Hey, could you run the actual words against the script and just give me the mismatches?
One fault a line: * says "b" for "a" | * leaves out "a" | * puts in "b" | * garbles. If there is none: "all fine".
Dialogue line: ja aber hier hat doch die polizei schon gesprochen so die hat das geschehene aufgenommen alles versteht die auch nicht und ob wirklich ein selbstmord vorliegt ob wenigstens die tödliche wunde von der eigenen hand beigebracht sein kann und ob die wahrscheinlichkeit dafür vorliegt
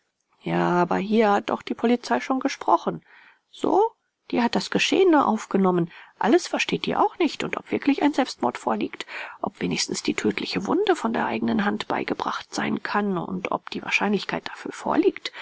all fine